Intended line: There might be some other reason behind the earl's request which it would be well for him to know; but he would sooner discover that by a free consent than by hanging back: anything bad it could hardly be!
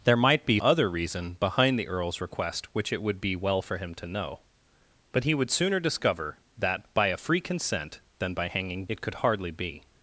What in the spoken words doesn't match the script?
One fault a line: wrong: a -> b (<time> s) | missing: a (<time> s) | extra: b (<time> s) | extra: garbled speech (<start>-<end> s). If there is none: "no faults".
missing: some (0.6 s)
missing: back anything bad (8.8 s)